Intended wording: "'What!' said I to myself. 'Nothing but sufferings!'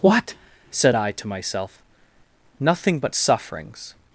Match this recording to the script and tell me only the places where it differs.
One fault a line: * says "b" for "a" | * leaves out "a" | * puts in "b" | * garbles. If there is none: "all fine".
all fine